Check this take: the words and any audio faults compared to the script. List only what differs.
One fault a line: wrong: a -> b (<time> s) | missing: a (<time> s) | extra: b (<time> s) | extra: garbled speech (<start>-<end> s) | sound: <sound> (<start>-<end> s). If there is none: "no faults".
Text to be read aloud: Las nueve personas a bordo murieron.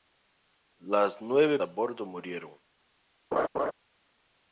missing: personas (1.6 s)
sound: laugh (3.3-3.7 s)